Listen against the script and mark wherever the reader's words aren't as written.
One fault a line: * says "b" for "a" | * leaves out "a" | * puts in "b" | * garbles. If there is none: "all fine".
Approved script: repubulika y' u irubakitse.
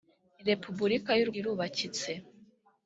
all fine